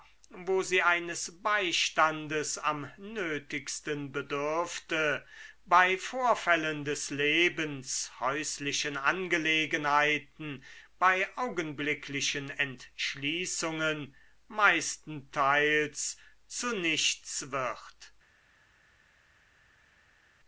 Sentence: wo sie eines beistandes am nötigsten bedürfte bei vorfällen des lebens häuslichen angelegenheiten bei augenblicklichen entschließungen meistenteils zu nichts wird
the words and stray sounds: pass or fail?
pass